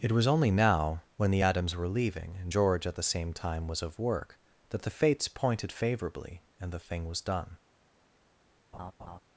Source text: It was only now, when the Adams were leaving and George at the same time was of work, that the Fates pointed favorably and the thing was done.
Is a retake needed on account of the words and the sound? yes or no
yes